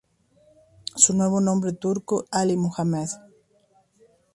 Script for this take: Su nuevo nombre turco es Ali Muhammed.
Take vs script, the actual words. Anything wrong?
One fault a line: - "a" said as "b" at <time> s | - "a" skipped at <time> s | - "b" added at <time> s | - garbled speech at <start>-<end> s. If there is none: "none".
- "es" skipped at 2.2 s